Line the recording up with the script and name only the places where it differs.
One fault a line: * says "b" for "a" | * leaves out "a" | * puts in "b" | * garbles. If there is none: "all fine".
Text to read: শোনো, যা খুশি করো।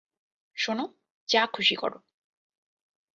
all fine